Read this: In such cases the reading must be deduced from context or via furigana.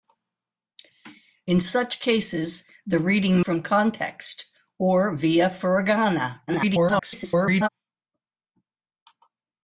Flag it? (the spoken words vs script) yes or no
yes